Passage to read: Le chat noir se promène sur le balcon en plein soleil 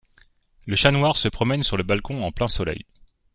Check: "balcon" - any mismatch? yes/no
no